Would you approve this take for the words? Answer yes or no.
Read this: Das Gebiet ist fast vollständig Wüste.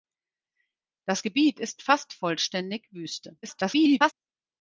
no